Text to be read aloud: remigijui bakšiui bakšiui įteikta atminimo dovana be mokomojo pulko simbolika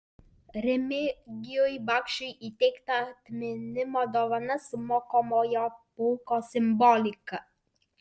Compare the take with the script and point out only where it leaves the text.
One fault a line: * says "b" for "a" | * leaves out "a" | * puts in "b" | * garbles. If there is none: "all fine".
* leaves out "bakšiui"
* says "su" for "be"